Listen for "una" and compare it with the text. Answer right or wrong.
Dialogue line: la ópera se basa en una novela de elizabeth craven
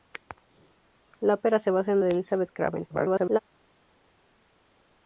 wrong